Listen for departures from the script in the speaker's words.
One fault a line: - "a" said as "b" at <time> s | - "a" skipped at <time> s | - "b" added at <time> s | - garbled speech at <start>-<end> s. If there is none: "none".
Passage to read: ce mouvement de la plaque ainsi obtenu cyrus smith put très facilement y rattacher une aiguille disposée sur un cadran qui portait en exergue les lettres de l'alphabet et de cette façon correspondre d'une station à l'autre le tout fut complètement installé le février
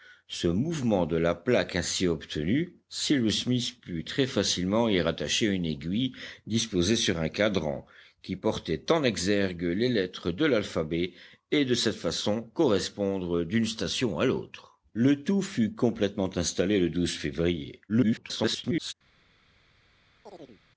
- garbled speech at 17.9-18.9 s